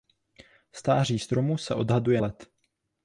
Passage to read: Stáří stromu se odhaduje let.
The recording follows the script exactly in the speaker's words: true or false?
true